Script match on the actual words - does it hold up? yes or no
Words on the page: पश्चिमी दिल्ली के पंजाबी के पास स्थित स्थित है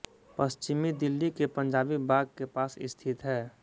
no